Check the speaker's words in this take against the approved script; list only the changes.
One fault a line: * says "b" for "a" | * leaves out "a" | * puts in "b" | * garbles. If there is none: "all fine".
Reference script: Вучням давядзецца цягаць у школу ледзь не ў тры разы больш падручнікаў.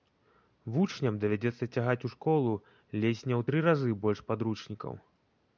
all fine